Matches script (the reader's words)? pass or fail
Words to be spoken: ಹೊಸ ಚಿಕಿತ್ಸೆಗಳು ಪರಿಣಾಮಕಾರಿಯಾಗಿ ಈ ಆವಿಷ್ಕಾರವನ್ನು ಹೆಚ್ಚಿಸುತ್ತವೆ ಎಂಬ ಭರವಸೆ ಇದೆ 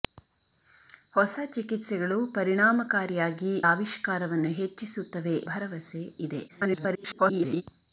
fail